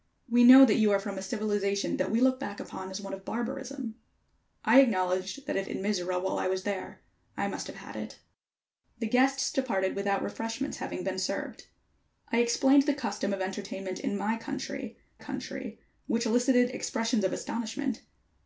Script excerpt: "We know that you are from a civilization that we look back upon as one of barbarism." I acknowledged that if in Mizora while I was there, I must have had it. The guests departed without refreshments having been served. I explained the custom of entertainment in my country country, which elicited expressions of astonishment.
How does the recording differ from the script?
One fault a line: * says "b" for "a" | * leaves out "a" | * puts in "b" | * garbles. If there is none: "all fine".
all fine